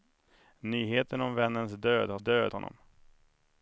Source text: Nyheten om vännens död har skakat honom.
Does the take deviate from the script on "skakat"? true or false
true